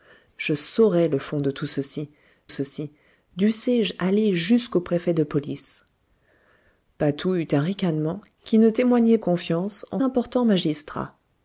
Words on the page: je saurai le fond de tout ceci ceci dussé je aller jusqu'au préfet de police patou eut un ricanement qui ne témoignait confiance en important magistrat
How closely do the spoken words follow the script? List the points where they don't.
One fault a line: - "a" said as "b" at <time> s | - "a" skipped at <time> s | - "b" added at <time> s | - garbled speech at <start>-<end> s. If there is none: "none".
none